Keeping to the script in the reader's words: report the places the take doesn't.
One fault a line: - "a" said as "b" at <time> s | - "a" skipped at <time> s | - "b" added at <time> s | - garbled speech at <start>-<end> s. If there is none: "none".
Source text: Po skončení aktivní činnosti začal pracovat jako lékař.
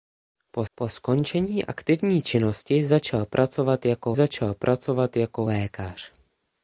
- "po" added at 0.7 s
- "začal pracovat jako" added at 4.1 s